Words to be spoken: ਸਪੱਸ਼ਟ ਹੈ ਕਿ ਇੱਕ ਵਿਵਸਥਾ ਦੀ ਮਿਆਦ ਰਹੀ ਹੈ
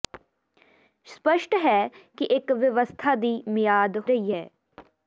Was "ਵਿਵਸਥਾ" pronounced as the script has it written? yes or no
yes